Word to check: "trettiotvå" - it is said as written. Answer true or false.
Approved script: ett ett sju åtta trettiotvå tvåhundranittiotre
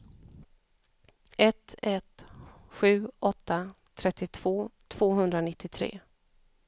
true